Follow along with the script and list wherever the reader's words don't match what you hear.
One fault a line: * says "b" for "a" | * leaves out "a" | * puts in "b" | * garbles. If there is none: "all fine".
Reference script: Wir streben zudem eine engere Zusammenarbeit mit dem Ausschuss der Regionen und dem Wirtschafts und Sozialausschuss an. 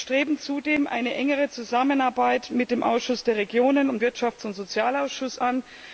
* leaves out "dem"